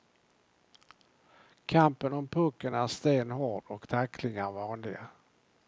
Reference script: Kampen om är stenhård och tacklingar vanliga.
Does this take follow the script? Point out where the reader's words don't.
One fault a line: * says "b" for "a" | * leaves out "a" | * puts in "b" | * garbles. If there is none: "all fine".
* puts in "pucken"